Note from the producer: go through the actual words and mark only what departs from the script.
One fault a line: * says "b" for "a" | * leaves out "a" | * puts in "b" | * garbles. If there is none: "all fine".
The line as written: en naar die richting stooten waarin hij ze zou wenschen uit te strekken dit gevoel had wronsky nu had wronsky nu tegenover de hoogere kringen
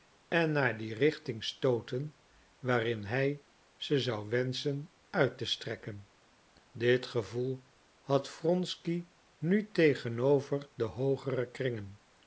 * leaves out "had wronsky nu"